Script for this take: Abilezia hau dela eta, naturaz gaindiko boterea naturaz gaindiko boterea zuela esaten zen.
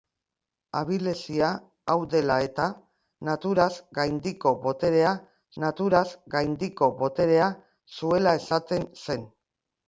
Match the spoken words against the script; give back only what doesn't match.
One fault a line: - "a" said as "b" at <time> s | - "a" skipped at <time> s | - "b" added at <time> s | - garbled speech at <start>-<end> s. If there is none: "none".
none